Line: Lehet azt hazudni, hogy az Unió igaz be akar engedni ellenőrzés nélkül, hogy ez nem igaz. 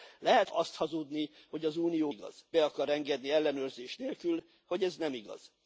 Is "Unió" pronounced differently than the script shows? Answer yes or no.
no